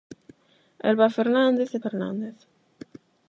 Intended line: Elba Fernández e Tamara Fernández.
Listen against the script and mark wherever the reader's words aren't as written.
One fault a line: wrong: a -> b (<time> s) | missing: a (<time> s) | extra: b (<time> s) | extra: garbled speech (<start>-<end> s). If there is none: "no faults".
missing: Tamara (1.8 s)